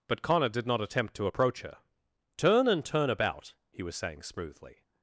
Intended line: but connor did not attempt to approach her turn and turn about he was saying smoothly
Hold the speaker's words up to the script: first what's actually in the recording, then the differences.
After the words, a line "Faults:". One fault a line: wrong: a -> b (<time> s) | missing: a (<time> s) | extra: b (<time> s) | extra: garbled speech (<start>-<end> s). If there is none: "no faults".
but connor did not attempt to approach her turn and turn about he was saying smoothly
Faults:
no faults